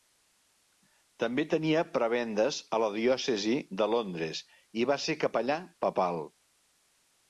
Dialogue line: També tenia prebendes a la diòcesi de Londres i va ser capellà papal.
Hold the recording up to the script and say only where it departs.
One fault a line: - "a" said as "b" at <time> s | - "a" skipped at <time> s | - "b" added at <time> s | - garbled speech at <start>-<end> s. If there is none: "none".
none